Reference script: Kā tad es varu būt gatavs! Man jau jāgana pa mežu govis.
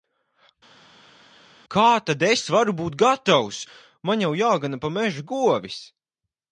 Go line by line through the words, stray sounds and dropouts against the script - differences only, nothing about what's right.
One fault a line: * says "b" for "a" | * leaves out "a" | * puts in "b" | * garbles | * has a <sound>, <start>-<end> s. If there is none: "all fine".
all fine